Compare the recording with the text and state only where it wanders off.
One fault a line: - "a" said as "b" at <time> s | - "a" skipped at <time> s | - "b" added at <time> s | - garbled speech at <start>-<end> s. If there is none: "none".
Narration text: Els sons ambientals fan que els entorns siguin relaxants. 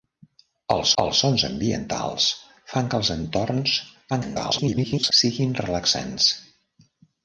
- "els" added at 1.0 s
- garbled speech at 4.1-5.1 s